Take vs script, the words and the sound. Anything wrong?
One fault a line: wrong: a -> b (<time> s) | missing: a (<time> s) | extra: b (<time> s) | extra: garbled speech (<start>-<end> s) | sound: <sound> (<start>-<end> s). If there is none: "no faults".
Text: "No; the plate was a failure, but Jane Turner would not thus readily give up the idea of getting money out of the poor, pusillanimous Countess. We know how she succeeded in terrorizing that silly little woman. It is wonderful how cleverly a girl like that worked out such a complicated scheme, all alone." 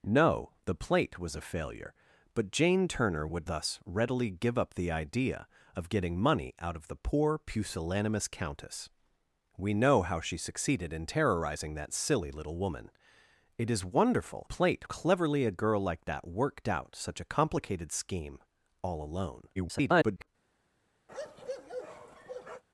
missing: not (3.5 s)
wrong: how -> plate (14.4 s)
extra: garbled speech (19.6-20.3 s)
sound: bark (21.1-22.6 s)